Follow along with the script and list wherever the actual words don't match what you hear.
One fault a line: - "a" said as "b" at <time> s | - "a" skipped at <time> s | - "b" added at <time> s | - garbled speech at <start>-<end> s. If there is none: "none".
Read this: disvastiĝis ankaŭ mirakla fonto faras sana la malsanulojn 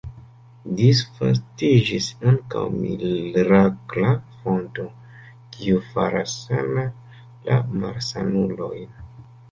- "kiu" added at 5.6 s